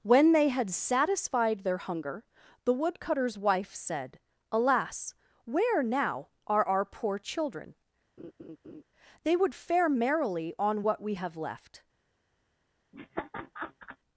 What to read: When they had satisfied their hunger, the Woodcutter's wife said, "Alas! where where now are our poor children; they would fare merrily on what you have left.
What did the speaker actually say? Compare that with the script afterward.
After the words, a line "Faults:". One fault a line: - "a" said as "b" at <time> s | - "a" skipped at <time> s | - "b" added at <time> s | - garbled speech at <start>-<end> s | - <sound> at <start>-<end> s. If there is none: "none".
When they had satisfied their hunger, the Woodcutter's wife said, "Alas! where now are our poor children; they would fare merrily on what we have left.
Faults:
- "where" skipped at 5.8 s
- laugh at 8.2-8.8 s
- "you" said as "we" at 11.0 s
- laugh at 12.9-14.0 s